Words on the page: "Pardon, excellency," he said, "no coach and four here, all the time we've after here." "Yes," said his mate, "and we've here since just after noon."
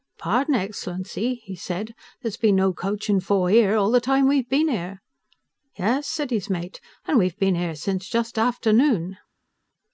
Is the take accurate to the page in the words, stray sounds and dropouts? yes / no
no